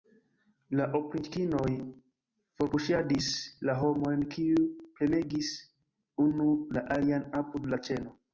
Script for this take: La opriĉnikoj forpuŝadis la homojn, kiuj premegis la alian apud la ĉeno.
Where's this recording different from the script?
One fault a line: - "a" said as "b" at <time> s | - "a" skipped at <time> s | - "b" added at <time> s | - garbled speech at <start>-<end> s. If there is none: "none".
- "unu" added at 6.3 s